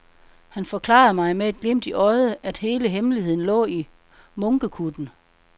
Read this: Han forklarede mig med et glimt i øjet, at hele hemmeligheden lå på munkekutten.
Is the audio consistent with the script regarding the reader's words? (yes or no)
no